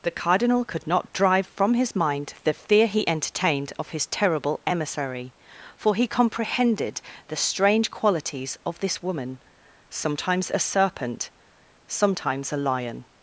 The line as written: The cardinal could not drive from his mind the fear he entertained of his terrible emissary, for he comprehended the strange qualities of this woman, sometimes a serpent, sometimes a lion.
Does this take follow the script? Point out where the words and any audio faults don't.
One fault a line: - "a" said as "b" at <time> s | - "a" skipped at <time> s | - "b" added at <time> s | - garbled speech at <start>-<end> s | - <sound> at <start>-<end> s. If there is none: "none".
none